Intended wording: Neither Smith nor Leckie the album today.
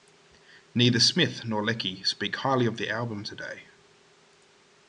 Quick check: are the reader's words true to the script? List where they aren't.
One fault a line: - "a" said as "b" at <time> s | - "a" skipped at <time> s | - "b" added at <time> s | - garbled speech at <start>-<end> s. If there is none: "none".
- "speak highly of" added at 2.0 s